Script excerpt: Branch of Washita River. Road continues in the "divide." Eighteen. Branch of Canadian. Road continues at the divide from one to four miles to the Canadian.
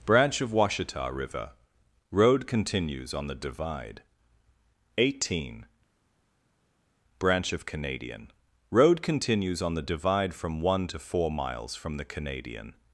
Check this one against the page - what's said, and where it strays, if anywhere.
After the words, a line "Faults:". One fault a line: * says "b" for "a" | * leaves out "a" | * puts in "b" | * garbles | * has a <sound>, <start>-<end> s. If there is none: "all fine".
Branch of Washita River. Road continues on the "divide." Eighteen. Branch of Canadian. Road continues on the divide from one to four miles from the Canadian.
Faults:
* says "on" for "in"
* says "on" for "at"
* says "from" for "to"